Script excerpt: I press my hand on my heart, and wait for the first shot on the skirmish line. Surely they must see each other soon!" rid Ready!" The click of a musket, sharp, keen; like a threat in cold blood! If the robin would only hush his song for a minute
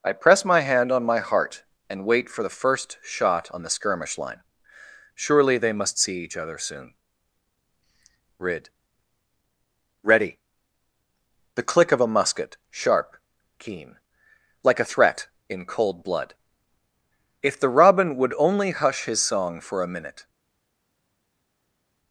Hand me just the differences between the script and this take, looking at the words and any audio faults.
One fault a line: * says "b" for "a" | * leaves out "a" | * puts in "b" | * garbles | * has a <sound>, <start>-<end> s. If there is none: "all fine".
all fine